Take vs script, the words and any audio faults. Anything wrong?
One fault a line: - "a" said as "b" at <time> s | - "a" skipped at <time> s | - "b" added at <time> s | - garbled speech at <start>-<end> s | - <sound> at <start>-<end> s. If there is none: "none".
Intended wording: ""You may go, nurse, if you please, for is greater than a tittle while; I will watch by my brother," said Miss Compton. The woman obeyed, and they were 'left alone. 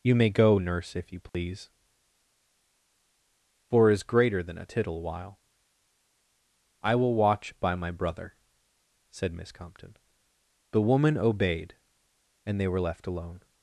- dropout at 1.3-1.3 s